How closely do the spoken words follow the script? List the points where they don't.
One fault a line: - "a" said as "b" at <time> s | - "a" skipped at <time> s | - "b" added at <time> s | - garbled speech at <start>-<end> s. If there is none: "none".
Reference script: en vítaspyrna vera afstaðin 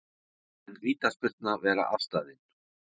none